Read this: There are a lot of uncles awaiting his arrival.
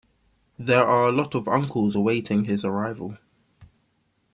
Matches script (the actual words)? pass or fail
pass